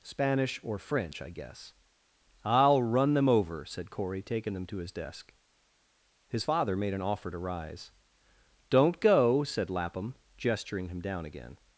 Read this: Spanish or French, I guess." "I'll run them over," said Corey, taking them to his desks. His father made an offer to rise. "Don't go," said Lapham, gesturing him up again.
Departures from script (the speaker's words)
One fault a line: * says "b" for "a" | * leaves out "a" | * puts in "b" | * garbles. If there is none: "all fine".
* says "desk" for "desks"
* says "down" for "up"